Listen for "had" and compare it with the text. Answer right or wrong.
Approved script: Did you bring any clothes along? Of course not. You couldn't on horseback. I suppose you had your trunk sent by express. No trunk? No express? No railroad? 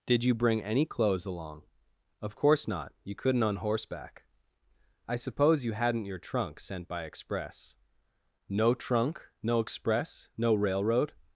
wrong